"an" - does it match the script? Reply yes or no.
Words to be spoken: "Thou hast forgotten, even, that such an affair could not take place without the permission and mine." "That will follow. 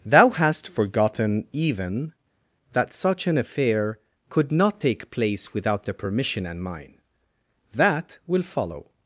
yes